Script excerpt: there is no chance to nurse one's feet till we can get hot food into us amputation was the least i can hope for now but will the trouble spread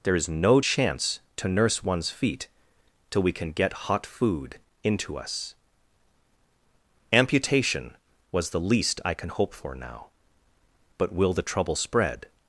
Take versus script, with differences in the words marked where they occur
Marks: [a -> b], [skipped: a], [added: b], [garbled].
there is no chance to nurse one's feet till we can get hot food into us amputation was the least i can hope for now but will the trouble spread